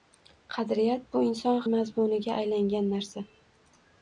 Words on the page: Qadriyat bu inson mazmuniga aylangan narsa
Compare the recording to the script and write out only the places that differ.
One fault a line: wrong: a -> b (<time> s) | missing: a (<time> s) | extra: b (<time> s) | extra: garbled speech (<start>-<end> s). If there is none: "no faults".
no faults